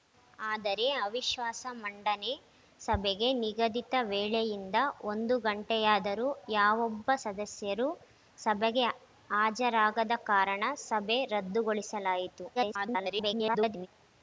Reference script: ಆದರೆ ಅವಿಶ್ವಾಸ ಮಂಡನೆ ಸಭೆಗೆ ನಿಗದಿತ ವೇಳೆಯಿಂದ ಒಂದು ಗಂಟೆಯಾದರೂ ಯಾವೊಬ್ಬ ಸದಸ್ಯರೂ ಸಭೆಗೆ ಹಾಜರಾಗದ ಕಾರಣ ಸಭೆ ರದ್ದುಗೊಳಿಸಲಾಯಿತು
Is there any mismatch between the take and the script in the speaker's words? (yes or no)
yes